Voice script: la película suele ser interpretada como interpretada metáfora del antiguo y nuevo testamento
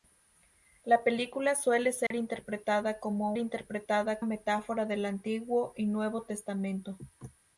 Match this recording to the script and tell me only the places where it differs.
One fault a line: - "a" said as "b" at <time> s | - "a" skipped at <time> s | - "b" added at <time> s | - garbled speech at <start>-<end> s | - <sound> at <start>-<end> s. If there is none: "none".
- dropout at 2.1-2.1 s